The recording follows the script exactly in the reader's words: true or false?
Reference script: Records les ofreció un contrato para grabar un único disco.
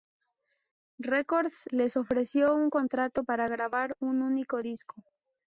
true